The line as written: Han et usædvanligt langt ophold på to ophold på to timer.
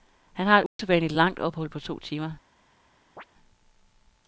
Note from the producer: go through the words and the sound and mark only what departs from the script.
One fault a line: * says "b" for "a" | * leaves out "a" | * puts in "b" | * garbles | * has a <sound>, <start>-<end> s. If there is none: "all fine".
* puts in "har"
* has a dropout, 0.7-0.8 s
* leaves out "ophold på to"
* has a chirp, 3.2-3.2 s